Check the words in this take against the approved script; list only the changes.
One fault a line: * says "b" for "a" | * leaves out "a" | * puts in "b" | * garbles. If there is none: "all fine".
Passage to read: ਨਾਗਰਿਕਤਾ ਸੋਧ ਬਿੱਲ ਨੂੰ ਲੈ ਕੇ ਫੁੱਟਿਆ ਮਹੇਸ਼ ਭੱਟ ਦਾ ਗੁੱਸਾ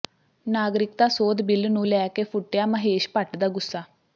all fine